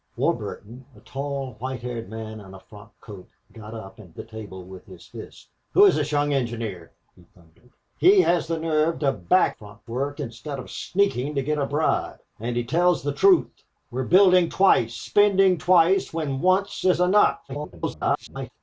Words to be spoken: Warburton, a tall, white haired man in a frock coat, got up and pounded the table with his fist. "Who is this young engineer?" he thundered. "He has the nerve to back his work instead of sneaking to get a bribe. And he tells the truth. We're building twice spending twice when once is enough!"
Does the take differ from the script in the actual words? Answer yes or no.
yes